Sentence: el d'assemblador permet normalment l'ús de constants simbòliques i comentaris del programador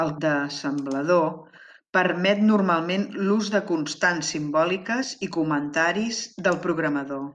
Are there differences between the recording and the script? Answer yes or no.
no